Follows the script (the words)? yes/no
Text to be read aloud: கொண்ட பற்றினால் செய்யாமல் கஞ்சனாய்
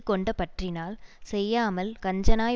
yes